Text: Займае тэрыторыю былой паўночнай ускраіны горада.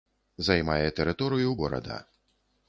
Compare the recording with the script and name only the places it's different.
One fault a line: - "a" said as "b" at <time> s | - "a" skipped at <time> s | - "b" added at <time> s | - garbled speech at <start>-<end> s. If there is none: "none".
- "былой паўночнай ускраіны" skipped at 1.5 s